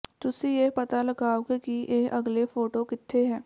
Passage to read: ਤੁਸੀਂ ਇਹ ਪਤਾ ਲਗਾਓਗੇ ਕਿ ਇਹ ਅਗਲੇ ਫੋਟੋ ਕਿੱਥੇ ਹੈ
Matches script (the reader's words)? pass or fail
pass